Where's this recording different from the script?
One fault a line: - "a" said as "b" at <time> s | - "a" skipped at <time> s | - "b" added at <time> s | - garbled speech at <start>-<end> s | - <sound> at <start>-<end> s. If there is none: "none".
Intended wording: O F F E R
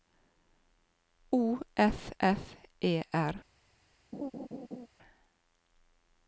- laugh at 4.1-4.9 s